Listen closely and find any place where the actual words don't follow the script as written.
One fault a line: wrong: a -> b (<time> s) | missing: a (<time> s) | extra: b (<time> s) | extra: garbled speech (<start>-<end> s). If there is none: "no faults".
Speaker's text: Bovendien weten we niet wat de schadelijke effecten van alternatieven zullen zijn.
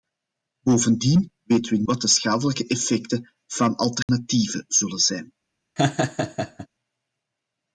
missing: niet (1.8 s)